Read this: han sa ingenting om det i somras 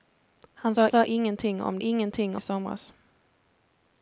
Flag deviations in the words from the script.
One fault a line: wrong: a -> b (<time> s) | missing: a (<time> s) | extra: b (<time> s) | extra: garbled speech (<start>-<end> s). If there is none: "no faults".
extra: sa (0.9 s)
wrong: det -> ingenting (1.8 s)